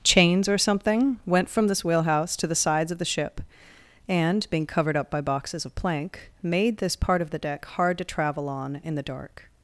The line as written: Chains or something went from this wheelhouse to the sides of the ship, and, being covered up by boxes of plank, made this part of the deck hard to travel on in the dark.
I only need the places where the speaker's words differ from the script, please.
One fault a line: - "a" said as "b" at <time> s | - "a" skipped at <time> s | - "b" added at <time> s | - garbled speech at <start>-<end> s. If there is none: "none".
none